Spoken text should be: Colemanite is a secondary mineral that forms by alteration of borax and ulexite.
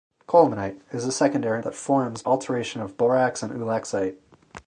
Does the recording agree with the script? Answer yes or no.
no